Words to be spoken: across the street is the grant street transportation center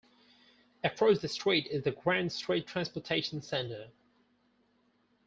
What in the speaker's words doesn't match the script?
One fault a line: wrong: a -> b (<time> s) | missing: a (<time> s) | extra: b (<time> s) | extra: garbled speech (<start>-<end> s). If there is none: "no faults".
no faults